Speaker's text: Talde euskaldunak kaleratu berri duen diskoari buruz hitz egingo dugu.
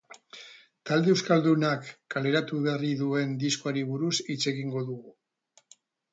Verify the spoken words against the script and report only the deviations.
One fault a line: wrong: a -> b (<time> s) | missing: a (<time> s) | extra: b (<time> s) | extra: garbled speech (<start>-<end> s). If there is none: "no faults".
no faults